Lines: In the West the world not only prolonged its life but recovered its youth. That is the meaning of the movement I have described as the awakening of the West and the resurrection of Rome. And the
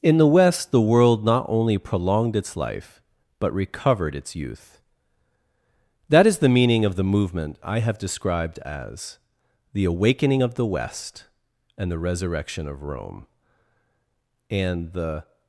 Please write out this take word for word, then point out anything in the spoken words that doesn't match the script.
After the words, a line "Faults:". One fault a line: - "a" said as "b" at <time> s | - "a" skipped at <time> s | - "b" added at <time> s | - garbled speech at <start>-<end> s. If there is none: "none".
In the West the world not only prolonged its life but recovered its youth. That is the meaning of the movement I have described as the awakening of the West and the resurrection of Rome. And the
Faults:
none